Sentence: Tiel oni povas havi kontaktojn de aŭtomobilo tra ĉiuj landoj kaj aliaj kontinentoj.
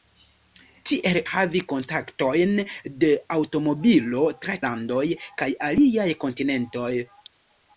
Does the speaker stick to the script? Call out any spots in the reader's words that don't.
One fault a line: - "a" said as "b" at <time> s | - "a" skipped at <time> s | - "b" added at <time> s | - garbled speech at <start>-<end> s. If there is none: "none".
- "oni povas" skipped at 1.2 s
- "ĉiuj" skipped at 4.6 s